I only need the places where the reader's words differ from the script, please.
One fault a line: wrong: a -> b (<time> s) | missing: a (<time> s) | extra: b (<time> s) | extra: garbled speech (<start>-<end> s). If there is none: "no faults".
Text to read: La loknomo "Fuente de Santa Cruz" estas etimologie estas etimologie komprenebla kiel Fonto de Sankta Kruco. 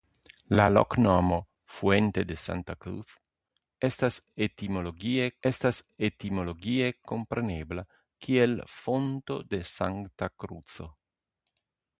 no faults